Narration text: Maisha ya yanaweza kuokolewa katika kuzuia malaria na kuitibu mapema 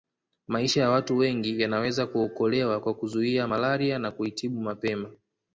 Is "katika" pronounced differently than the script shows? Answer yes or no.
yes